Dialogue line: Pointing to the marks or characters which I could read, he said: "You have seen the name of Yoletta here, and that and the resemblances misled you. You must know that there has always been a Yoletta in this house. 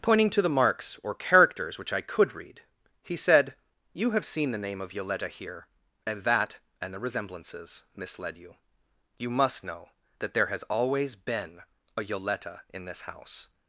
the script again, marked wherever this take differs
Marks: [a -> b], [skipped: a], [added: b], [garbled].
Pointing to the marks or characters which I could read, he said: "You have seen the name of Yoletta here, and that and the resemblances misled you. You must know that there has always been a Yoletta in this house.